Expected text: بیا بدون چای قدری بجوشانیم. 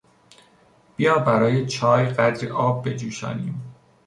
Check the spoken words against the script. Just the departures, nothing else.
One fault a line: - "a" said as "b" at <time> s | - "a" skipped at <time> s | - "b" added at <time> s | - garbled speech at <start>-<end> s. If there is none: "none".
- "بدون" said as "برای" at 1.2 s
- "آب" added at 2.5 s